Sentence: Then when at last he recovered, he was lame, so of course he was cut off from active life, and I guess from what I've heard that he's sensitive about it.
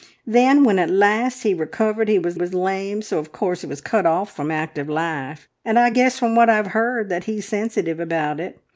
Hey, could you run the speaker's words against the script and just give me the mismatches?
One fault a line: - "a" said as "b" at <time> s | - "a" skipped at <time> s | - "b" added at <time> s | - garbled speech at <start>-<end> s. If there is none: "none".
- "was" added at 2.3 s